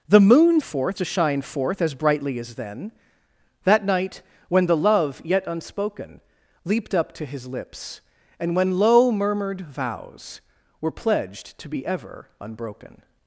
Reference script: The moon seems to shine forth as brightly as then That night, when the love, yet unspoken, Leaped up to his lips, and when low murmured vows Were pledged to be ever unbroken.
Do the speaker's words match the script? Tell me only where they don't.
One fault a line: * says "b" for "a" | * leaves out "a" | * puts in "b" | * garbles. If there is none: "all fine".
* says "forth" for "seems"